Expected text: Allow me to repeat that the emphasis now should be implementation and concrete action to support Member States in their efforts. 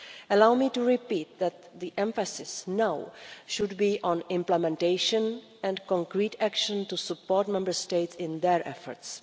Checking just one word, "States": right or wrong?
right